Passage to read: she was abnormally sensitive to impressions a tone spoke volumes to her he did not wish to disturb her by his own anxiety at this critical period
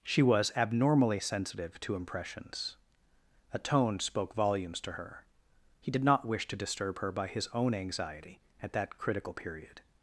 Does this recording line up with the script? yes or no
no